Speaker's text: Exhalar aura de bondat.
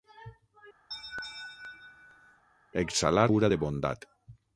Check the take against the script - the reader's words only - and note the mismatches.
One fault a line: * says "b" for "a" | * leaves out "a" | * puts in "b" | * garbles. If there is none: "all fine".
all fine